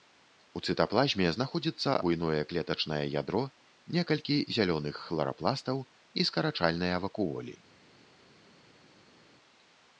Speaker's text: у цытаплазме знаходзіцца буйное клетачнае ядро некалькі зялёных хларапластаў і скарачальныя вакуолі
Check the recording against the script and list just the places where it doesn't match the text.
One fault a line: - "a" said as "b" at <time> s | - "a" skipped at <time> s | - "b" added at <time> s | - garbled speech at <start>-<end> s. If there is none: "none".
none